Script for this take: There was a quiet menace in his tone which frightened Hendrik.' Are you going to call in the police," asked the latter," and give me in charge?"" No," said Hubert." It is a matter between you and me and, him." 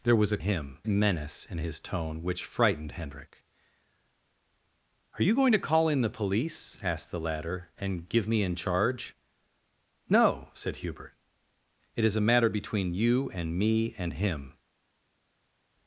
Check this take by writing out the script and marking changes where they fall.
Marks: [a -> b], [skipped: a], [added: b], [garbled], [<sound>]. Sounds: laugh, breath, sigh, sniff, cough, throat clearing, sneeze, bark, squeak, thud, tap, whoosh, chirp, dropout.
There was a [quiet -> him] menace in his tone which frightened Hendrik.' Are you going to call in the police," asked the latter," and give me in charge?"" No," said Hubert." It is a matter between you and me and, him."